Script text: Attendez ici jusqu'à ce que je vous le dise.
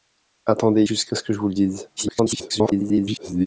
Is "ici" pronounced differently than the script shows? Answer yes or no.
yes